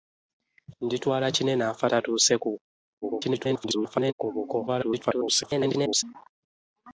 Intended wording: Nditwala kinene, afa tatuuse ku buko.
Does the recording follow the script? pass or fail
fail